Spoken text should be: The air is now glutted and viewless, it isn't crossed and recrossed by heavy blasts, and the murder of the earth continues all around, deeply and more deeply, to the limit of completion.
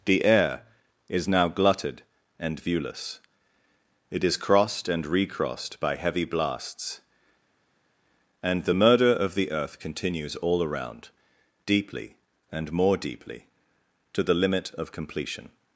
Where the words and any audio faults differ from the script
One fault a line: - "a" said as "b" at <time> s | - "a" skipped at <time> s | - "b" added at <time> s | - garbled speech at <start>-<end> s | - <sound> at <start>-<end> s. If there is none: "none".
- "isn't" said as "is" at 4.2 s